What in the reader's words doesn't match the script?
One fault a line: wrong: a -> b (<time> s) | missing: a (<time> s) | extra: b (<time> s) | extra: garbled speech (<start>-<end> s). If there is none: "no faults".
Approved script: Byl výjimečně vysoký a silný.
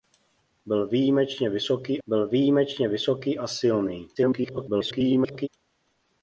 extra: byl výjimečně vysoký (2.1 s)
extra: garbled speech (4.1-5.5 s)